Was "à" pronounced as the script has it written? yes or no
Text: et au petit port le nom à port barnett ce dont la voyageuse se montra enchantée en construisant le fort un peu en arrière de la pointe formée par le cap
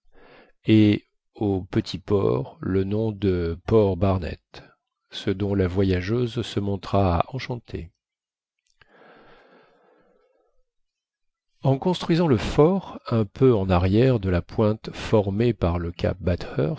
no